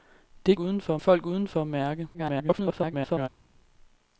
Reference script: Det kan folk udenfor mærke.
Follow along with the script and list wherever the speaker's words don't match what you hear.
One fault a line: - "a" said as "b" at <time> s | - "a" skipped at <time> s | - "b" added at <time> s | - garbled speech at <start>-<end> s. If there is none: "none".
- "kan" said as "udenfor" at 0.6 s
- garbled speech at 2.1-3.3 s